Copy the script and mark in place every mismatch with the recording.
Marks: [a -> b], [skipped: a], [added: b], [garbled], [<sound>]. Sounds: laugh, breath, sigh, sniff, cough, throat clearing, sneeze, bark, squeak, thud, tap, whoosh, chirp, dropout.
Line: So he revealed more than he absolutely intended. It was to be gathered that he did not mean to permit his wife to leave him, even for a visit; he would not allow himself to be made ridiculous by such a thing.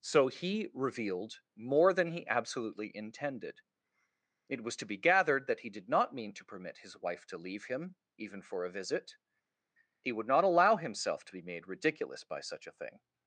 So he revealed more than he absolutely intended. It was to be gathered that he did not mean to permit his wife to leave him, even for a visit; he would not allow himself to be made ridiculous by such a thing.